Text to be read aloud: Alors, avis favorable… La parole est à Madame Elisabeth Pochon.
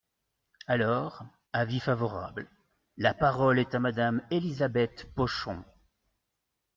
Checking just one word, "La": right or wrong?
right